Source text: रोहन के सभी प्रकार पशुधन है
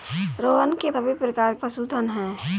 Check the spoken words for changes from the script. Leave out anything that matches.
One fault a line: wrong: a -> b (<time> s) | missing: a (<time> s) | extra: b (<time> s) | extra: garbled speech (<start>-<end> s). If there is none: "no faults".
no faults